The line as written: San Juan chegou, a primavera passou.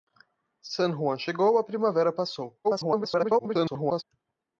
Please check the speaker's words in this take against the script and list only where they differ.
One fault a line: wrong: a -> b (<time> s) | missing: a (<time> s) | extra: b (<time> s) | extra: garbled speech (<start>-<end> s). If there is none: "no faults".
extra: garbled speech (2.6-4.0 s)